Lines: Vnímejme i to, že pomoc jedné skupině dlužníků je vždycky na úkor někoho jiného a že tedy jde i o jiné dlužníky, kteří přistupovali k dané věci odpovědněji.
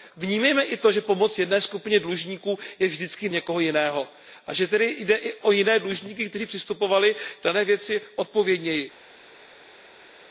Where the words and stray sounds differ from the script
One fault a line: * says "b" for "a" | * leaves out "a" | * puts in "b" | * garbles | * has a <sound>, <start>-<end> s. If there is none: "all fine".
* leaves out "na úkor"